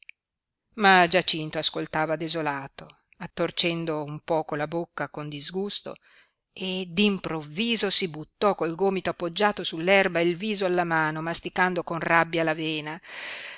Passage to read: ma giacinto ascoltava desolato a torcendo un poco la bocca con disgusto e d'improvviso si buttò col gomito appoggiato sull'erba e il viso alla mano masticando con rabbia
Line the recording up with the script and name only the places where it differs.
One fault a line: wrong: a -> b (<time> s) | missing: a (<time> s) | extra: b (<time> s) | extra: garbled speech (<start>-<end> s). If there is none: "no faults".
no faults